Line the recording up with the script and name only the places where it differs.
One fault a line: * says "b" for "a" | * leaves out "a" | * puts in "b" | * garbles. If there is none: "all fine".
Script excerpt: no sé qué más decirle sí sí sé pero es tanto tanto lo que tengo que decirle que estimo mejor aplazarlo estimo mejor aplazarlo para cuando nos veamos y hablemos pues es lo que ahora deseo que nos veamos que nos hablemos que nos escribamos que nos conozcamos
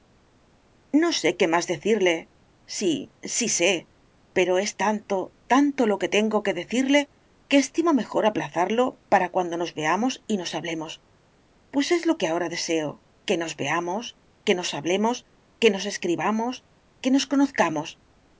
* leaves out "estimo mejor aplazarlo"
* puts in "nos"